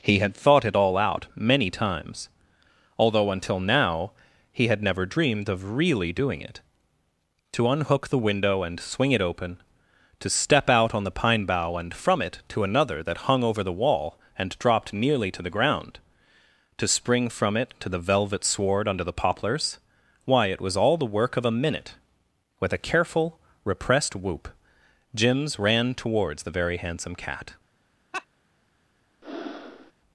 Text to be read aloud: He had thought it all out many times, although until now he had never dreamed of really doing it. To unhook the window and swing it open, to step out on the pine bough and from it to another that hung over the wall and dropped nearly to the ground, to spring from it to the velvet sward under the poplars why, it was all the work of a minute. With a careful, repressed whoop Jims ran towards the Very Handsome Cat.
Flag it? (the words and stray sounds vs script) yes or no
yes